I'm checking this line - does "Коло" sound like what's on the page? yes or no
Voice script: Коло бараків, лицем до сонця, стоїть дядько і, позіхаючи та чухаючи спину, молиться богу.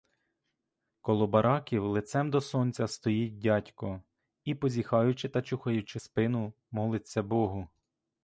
yes